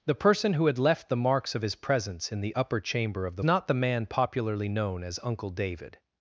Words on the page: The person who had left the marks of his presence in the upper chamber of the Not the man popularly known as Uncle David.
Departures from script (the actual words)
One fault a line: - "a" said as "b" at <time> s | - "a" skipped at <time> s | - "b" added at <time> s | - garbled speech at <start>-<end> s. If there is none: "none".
none